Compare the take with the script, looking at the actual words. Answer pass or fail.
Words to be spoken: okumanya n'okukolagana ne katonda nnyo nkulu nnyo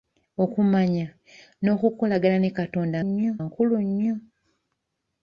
pass